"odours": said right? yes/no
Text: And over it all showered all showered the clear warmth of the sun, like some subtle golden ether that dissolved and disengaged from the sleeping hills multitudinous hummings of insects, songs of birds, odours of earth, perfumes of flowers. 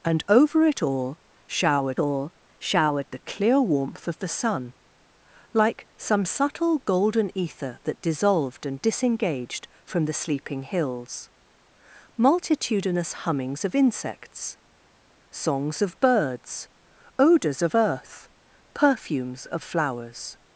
yes